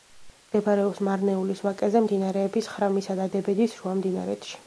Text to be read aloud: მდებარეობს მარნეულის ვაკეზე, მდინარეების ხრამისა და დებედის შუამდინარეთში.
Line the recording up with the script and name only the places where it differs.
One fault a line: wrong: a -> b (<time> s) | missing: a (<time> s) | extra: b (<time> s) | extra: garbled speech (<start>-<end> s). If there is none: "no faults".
no faults